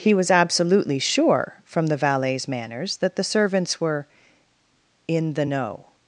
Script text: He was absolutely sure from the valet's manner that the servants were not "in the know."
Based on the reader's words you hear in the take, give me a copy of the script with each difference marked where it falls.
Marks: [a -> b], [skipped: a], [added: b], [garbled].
He was absolutely sure from the valet's [manner -> manners] that the servants were [skipped: not] "in the know."